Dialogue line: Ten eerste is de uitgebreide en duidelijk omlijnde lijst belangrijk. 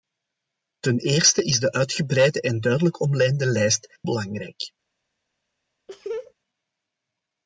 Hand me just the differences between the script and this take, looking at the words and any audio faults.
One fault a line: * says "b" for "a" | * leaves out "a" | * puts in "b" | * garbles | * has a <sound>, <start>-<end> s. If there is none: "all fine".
* has a laugh, 5.9-6.3 s